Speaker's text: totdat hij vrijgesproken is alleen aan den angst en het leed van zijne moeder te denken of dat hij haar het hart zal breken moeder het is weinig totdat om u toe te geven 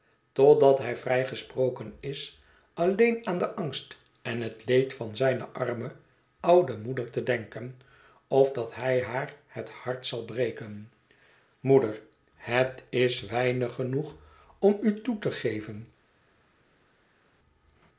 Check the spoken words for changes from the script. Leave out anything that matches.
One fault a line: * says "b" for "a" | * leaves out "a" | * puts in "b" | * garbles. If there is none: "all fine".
* puts in "arme oude"
* says "genoeg" for "totdat"